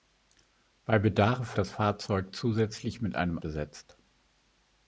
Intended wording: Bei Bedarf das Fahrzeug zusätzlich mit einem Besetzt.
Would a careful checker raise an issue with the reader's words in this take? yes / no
no